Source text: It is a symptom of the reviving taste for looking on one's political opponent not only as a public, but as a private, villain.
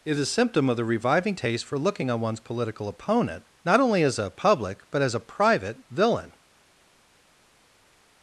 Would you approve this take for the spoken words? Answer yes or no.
yes